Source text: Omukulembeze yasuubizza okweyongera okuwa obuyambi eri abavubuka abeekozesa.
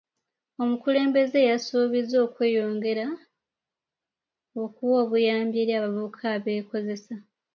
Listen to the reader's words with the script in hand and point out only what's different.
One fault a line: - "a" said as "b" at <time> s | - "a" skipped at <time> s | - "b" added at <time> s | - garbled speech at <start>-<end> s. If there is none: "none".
none